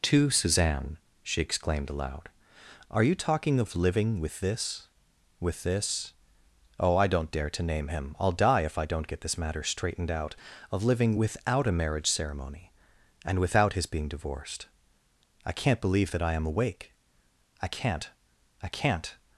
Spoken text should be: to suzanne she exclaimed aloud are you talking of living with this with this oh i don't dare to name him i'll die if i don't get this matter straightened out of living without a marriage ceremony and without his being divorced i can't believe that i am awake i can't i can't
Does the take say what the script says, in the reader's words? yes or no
yes